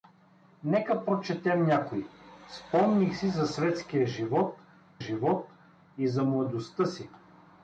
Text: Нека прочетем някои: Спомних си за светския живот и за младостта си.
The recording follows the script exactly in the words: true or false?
false